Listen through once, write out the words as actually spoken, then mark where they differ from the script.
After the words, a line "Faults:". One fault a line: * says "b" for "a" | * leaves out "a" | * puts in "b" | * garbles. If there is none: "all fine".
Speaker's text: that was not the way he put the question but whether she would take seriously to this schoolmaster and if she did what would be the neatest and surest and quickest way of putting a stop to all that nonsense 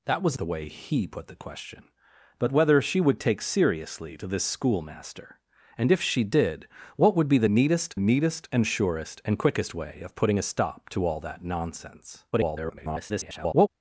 that was the way he put the question but whether she would take seriously to this schoolmaster and if she did what would be the neatest neatest and surest and quickest way of putting a stop to all that nonsense [garbled]
Faults:
* leaves out "not"
* puts in "neatest"
* garbles